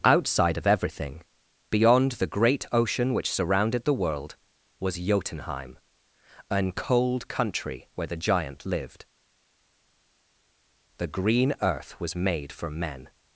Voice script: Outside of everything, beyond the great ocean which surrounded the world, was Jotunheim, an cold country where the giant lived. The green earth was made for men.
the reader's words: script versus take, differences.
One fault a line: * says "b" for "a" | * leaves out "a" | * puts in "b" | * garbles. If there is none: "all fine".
all fine